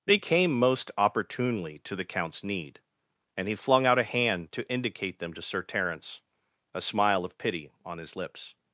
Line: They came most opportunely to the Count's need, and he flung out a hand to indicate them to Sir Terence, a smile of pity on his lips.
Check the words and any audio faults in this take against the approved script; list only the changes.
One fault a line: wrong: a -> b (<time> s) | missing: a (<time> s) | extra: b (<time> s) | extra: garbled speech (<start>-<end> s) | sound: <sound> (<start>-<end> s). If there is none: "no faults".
no faults